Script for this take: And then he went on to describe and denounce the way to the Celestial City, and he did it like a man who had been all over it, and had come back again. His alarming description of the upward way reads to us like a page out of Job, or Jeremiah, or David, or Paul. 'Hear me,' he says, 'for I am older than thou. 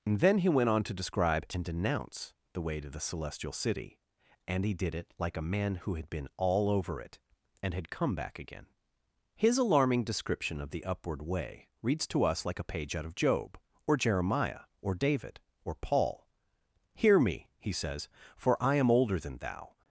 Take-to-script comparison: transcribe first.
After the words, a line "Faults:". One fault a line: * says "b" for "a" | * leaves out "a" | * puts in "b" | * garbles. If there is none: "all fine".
And then he went on to describe and denounce the way to the Celestial City, and he did it like a man who had been all over it, and had come back again. His alarming description of the upward way reads to us like a page out of Job, or Jeremiah, or David, or Paul. 'Hear me,' he says, 'for I am older than thou.
Faults:
all fine